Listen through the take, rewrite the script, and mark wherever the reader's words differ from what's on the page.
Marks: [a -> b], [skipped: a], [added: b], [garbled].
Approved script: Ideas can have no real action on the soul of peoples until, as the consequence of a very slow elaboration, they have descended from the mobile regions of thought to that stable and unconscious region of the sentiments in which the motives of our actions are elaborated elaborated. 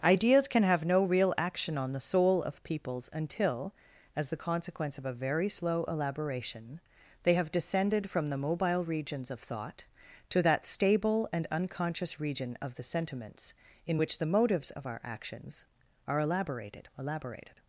Ideas can have no real action on the soul of peoples until, as the consequence of a very slow elaboration, they have descended from the mobile regions of thought to that stable and unconscious region of the sentiments in which the motives of our actions are elaborated elaborated.